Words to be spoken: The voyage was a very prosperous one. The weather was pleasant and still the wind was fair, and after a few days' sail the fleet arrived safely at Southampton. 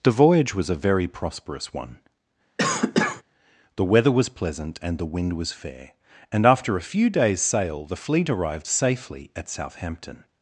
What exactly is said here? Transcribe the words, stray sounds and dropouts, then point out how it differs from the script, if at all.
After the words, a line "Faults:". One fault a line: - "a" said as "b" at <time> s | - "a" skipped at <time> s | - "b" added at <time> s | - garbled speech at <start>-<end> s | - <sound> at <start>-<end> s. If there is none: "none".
The voyage was a very prosperous one. The weather was pleasant and the wind was fair, and after a few days' sail the fleet arrived safely at Southampton.
Faults:
- cough at 2.6-3.2 s
- "still" skipped at 5.0 s